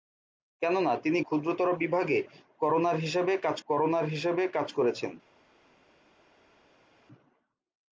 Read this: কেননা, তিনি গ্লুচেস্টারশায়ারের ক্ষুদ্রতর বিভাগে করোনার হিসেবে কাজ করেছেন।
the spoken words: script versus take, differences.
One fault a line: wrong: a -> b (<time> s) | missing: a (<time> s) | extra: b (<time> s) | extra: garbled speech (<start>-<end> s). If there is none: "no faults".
missing: গ্লুচেস্টারশায়ারের (1.2 s)
extra: করোনার হিসেবে কাজ (3.7 s)